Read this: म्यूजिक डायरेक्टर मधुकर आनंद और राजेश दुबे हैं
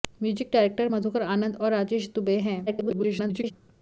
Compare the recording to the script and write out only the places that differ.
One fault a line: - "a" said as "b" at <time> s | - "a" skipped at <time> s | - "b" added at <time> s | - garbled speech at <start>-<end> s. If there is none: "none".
- garbled speech at 2.7-3.5 s